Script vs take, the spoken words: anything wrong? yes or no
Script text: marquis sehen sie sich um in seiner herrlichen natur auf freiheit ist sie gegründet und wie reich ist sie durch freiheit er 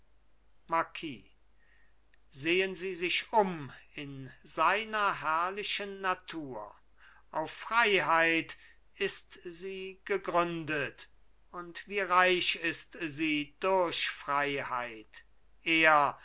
no